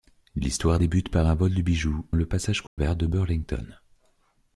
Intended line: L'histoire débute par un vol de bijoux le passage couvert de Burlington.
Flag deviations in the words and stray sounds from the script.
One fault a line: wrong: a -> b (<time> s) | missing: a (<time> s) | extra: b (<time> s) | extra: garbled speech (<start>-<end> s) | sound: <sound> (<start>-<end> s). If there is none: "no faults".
sound: dropout (2.7-2.8 s)